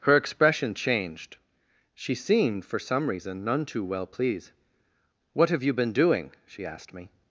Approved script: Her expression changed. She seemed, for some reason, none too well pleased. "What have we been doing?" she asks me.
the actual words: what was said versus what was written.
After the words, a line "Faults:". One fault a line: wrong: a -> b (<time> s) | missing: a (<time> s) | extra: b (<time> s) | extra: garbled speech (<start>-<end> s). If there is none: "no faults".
Her expression changed. She seemed, for some reason, none too well pleased. "What have you been doing?" she asked me.
Faults:
wrong: we -> you (5.6 s)
wrong: asks -> asked (6.7 s)